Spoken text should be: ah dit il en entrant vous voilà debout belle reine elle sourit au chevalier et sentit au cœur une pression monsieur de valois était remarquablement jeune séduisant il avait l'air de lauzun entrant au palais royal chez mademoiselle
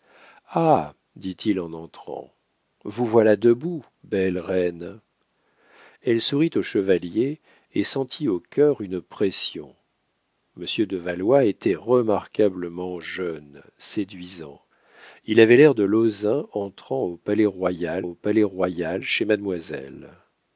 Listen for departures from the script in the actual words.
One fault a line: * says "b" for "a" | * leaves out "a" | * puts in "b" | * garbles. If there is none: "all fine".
* puts in "au palais royal"